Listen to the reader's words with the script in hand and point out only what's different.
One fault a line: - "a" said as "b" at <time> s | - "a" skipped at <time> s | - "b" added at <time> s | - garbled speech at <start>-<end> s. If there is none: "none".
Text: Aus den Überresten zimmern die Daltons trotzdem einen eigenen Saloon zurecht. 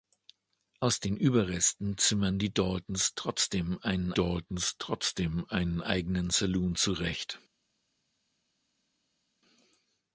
- "Daltons trotzdem einen" added at 4.1 s